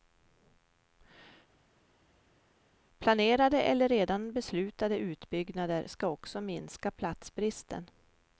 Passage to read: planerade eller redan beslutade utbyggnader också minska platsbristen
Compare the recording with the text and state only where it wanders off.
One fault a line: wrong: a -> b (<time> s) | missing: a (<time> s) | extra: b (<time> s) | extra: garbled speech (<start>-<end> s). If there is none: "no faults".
extra: ska (5.9 s)